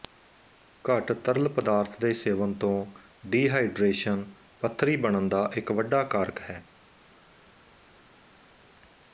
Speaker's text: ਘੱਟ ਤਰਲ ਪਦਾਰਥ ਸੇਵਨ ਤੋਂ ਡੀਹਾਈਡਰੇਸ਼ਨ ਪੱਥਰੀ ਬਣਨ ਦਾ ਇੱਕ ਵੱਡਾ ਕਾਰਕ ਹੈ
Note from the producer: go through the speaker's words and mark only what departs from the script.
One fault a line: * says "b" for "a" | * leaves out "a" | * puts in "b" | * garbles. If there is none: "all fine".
* puts in "ਦੇ"